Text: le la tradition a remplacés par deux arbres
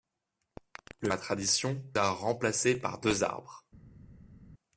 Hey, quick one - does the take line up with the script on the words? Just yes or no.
yes